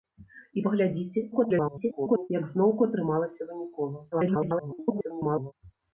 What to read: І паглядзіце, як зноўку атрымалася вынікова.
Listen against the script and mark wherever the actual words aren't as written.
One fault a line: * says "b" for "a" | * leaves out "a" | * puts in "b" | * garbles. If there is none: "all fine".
* garbles
* garbles